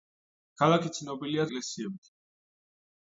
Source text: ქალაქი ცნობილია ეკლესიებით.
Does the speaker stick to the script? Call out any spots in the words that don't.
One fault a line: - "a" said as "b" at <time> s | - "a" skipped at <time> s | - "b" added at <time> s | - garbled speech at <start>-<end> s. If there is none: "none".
none